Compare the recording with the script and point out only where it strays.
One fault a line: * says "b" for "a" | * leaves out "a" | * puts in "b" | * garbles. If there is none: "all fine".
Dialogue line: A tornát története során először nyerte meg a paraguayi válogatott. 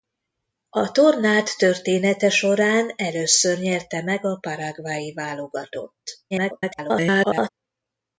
* garbles